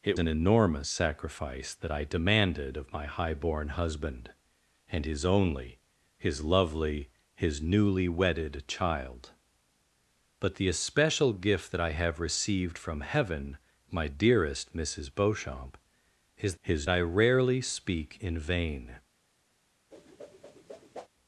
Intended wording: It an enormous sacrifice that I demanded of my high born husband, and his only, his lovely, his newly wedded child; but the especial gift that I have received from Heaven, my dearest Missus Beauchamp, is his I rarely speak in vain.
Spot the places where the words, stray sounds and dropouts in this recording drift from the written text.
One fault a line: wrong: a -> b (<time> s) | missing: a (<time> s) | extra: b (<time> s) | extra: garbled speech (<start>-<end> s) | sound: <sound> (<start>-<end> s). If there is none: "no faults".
sound: whoosh (19.9-21.1 s)